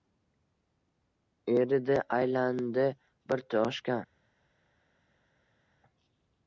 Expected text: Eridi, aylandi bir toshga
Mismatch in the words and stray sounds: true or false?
false